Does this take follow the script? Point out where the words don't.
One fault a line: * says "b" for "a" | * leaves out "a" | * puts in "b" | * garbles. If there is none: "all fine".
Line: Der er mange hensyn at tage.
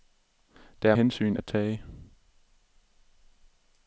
* leaves out "mange"